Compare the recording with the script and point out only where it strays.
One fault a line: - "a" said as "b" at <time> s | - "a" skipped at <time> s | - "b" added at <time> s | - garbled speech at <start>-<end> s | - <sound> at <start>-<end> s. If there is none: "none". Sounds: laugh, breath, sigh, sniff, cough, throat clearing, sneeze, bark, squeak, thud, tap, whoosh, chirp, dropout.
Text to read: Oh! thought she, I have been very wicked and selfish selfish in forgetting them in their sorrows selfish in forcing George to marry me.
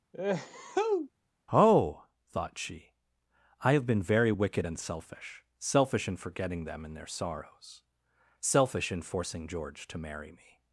- sneeze at 0.1-1.1 s